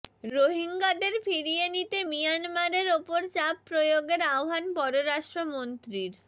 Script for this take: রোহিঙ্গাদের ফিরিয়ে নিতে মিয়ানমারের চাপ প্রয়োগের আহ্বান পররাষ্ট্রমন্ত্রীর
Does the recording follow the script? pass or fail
fail